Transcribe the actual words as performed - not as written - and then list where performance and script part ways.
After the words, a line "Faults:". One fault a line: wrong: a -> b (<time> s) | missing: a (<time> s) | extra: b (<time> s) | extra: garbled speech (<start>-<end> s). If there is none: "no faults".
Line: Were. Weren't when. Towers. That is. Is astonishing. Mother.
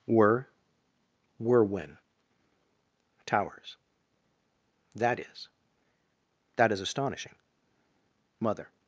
Were. Were when. Towers. That is. That is astonishing. Mother.
Faults:
wrong: Weren't -> Were (1.4 s)
extra: That (6.5 s)